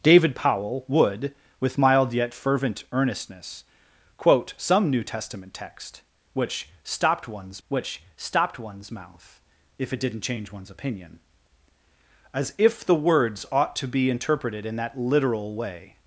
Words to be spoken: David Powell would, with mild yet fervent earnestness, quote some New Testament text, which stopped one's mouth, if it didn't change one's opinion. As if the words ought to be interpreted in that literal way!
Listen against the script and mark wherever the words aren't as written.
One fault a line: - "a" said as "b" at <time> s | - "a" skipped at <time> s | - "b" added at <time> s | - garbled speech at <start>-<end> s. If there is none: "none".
- "which stopped one's" added at 7.7 s